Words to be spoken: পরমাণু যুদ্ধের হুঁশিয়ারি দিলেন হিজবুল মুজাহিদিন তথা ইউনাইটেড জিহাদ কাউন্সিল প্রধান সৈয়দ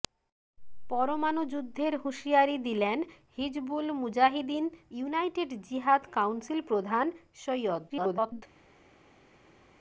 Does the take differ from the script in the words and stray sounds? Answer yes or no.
yes